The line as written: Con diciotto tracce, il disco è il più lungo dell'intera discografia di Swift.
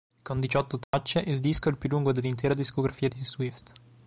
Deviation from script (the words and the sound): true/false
true